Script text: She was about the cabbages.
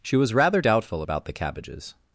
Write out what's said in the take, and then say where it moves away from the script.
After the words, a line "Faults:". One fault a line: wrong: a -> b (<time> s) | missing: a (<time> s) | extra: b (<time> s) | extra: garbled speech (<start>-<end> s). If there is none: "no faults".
She was rather doubtful about the cabbages.
Faults:
extra: rather doubtful (0.3 s)